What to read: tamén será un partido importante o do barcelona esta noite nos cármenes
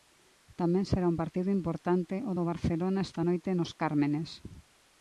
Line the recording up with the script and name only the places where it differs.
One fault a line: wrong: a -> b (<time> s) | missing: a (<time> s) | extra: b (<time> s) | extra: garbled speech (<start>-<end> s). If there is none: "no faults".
no faults